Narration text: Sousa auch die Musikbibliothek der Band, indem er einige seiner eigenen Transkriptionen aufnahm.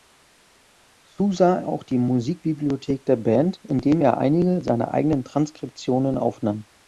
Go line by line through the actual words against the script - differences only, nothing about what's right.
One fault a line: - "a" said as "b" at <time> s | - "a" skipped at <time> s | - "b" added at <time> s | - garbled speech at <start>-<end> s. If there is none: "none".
none